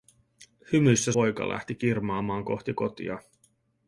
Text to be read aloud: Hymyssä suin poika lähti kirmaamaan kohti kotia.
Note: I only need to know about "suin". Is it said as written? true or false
false